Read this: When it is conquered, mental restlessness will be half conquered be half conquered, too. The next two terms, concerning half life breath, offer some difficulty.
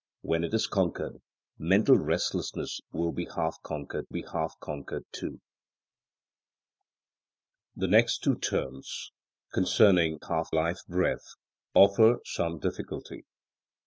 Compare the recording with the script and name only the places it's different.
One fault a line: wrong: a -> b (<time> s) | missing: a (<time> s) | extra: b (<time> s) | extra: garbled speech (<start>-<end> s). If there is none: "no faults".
no faults